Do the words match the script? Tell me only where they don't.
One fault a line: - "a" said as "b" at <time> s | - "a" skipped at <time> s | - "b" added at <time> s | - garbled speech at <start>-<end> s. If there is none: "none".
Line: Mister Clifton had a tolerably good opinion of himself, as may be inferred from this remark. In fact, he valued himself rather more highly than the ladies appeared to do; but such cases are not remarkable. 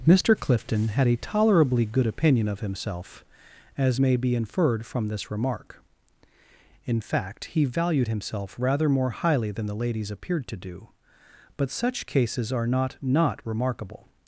- "not" added at 13.0 s